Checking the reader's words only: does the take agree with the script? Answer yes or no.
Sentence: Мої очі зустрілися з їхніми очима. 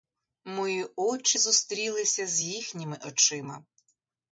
yes